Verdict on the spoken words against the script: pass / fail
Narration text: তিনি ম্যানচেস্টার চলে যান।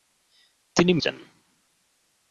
fail